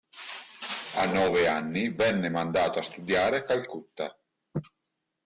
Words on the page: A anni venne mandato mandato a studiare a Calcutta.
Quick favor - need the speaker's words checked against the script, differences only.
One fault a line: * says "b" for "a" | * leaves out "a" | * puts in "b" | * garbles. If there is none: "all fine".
* puts in "nove"
* leaves out "mandato"